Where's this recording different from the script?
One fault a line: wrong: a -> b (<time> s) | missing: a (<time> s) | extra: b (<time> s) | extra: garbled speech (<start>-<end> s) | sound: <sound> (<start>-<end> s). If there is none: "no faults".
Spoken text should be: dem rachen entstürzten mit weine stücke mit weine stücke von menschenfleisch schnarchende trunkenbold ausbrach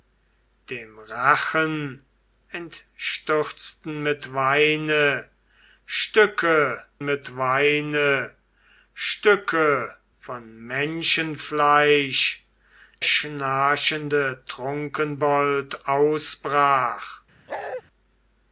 sound: bark (17.5-17.8 s)